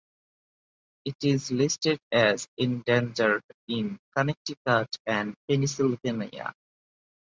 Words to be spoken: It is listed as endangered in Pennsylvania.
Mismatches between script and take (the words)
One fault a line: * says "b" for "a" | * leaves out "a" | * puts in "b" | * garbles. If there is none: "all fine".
* puts in "Connecticut and"